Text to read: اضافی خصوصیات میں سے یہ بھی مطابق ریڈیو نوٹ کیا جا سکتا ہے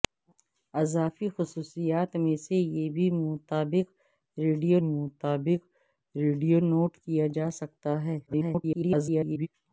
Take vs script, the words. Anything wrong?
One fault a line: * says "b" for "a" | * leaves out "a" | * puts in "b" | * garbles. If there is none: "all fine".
* puts in "مطابق ریڈیو"
* garbles